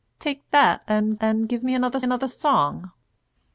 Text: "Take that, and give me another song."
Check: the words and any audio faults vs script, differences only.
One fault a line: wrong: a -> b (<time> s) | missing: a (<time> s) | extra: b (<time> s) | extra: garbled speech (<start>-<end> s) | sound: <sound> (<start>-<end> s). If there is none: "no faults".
extra: and (1.2 s)
extra: another (2.0 s)